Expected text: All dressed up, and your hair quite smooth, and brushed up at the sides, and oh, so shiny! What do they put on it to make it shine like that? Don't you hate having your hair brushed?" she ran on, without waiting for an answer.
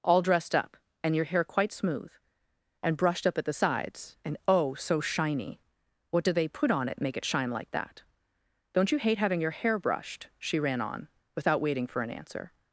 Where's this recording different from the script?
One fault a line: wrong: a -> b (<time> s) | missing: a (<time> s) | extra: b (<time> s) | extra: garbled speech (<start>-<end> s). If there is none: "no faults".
missing: to (7.0 s)